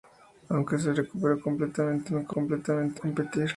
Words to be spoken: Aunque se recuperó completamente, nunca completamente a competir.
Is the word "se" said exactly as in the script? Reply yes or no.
yes